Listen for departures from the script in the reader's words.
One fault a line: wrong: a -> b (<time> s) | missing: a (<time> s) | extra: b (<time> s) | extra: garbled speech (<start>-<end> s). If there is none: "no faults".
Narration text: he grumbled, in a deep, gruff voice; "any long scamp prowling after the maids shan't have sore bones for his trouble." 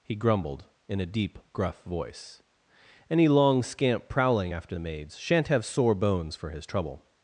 no faults